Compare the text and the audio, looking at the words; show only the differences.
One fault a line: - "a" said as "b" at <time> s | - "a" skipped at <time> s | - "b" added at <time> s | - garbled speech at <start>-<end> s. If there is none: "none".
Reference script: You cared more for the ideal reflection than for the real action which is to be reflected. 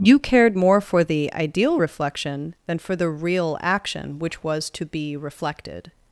- "is" said as "was" at 4.4 s